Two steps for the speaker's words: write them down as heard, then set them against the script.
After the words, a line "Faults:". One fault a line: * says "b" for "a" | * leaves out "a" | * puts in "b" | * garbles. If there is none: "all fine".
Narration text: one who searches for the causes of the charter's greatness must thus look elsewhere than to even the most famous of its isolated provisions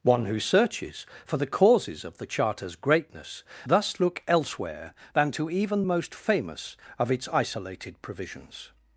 one who searches for the causes of the charter's greatness thus look elsewhere than to even most famous of its isolated provisions
Faults:
* leaves out "must"
* leaves out "the"